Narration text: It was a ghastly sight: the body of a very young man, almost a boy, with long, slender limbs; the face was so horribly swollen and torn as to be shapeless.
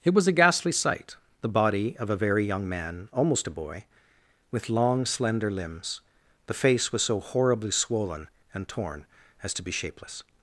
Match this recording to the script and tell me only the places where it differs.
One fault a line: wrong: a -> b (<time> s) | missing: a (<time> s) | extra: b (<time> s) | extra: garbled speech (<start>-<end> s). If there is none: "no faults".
no faults